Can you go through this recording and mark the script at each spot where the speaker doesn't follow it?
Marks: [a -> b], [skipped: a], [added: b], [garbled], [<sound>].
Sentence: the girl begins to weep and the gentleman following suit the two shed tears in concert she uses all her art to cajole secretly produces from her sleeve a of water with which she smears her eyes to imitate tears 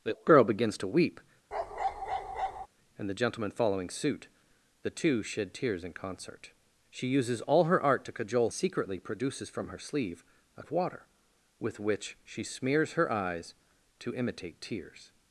the girl begins to weep [bark] and the gentleman following suit the two shed tears in concert she uses all her art to cajole secretly produces from her sleeve a of water with which she smears her eyes to imitate tears